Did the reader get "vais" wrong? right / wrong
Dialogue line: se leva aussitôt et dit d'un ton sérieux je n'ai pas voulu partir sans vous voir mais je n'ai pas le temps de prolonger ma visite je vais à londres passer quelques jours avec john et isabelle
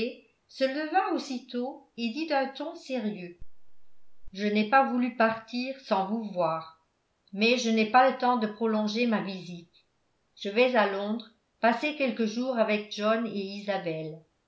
right